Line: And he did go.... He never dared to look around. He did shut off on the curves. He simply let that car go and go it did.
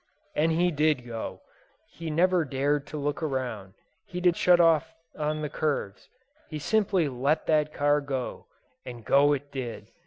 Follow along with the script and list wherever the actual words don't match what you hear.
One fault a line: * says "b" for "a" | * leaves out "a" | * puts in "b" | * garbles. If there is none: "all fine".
all fine